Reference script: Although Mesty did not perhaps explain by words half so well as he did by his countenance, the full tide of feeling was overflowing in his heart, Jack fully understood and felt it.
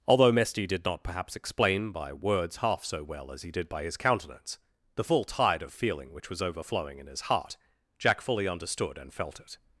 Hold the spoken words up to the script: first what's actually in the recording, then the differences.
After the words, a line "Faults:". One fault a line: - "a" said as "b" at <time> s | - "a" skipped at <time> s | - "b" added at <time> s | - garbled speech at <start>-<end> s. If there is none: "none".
Although Mesty did not perhaps explain by words half so well as he did by his countenance, the full tide of feeling which was overflowing in his heart, Jack fully understood and felt it.
Faults:
- "which" added at 6.1 s